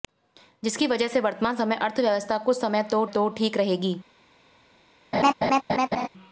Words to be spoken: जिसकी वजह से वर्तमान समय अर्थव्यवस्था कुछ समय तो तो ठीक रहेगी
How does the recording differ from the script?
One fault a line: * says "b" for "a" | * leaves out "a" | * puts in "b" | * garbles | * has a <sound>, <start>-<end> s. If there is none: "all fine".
* has a laugh, 5.1-6.1 s